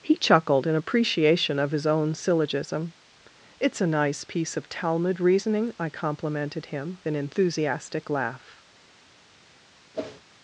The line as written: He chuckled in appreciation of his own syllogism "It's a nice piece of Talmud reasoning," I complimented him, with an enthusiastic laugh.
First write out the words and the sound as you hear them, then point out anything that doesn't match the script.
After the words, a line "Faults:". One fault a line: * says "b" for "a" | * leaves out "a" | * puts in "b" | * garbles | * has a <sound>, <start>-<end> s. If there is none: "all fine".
He chuckled in appreciation of his own syllogism "It's a nice piece of Talmud reasoning," I complimented him, an enthusiastic laugh.
Faults:
* leaves out "with"
* has a whoosh, 9.9-10.2 s